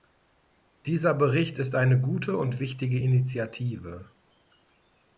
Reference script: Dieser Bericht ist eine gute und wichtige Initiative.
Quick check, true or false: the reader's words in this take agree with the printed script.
true